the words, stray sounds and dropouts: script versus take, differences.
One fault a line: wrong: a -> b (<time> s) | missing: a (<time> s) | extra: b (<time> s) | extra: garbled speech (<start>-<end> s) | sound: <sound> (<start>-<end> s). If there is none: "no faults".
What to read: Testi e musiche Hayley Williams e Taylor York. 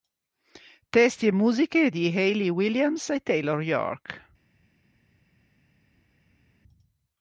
extra: di (1.9 s)